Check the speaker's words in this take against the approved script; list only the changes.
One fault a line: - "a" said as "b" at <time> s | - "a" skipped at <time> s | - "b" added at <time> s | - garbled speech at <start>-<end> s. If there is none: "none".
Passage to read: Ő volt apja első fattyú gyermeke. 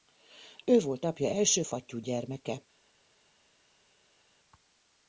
none